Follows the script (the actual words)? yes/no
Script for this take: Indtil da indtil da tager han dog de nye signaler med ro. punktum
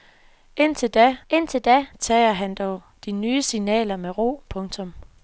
yes